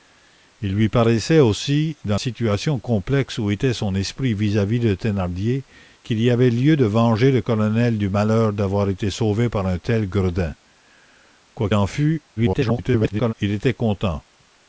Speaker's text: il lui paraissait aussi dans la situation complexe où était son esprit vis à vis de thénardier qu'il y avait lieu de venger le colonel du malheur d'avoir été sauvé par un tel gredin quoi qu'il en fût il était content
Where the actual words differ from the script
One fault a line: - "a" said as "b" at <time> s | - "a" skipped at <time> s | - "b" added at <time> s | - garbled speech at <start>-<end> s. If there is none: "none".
- "la" skipped at 2.2 s
- "qu'il" skipped at 11.7 s
- garbled speech at 12.4-13.3 s